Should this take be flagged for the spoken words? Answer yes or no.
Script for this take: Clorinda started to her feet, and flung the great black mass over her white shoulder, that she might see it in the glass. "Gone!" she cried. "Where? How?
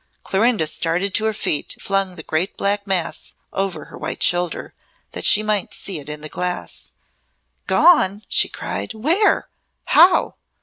yes